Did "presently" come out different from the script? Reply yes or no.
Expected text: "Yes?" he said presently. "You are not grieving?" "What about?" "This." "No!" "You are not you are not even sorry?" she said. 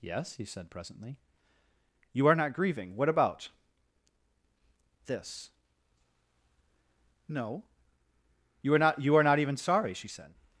no